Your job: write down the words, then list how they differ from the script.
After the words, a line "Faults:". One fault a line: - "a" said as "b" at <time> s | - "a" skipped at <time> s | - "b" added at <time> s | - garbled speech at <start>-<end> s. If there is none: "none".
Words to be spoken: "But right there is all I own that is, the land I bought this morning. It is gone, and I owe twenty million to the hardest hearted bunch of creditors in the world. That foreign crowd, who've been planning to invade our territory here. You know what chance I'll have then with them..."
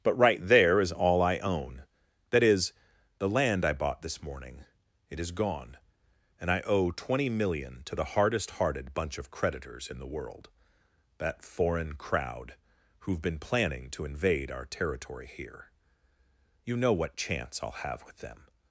"But right there is all I own that is, the land I bought this morning. It is gone, and I owe twenty million to the hardest hearted bunch of creditors in the world. That foreign crowd, who've been planning to invade our territory here. You know what chance I'll have with them..."
Faults:
- "then" skipped at 18.1 s